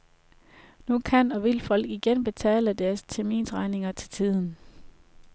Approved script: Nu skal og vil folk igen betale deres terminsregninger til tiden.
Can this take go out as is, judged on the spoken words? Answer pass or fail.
fail